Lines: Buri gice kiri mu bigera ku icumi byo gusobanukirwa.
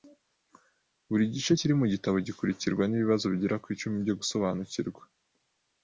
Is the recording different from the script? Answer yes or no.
yes